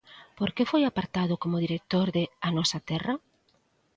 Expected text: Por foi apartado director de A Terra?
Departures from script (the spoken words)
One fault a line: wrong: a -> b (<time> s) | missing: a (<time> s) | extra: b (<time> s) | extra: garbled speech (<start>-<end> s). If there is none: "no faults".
extra: que (0.6 s)
extra: como (1.4 s)
extra: Nosa (2.6 s)